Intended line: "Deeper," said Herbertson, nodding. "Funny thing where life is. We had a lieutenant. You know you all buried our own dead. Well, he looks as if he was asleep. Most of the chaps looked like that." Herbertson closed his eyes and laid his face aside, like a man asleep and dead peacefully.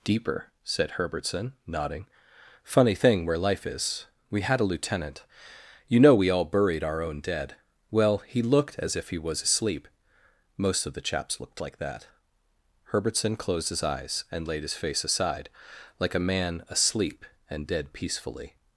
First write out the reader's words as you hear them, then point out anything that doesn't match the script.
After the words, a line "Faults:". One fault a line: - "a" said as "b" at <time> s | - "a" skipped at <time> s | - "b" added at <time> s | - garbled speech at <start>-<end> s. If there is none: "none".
"Deeper," said Herbertson, nodding. "Funny thing where life is. We had a lieutenant. You know we all buried our own dead. Well, he looked as if he was asleep. Most of the chaps looked like that." Herbertson closed his eyes and laid his face aside, like a man asleep and dead peacefully.
Faults:
- "you" said as "we" at 6.1 s
- "looks" said as "looked" at 8.4 s